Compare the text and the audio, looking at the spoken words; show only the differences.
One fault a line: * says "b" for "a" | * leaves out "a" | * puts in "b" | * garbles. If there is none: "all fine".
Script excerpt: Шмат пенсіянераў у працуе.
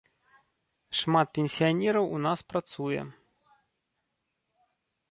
* puts in "нас"